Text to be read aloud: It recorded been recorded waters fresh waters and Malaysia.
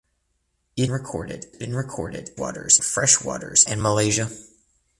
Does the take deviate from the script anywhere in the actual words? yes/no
no